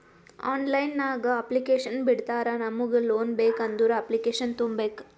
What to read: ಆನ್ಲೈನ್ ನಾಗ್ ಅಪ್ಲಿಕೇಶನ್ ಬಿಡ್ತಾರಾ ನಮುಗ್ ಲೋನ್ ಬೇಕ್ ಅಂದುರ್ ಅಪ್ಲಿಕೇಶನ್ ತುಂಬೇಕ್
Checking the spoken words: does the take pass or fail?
pass